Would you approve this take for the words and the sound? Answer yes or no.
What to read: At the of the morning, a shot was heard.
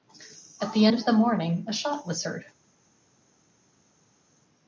yes